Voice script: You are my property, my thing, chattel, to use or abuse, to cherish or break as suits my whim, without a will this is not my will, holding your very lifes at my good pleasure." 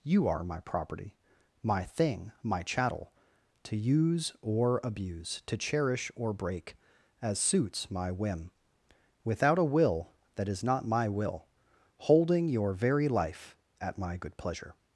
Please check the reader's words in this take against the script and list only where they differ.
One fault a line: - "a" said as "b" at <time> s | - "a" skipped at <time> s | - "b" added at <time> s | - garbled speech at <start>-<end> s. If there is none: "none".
- "my" added at 2.4 s
- "this" said as "that" at 10.3 s
- "lifes" said as "life" at 13.1 s